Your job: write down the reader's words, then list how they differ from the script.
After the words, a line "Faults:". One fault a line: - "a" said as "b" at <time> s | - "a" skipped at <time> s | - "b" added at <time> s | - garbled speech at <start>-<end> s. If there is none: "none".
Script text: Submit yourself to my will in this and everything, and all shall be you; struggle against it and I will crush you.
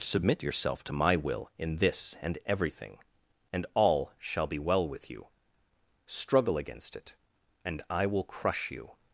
Submit yourself to my will in this and everything, and all shall be well with you; struggle against it and I will crush you.
Faults:
- "well with" added at 4.6 s